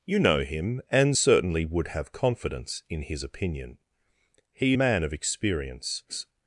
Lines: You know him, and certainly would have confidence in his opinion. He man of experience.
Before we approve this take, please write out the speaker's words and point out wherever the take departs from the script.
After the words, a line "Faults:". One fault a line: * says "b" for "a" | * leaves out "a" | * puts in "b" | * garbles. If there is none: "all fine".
You know him, and certainly would have confidence in his opinion. He man of experience.
Faults:
all fine